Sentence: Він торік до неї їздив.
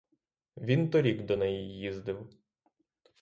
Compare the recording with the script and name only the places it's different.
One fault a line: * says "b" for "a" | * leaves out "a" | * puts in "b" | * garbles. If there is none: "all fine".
all fine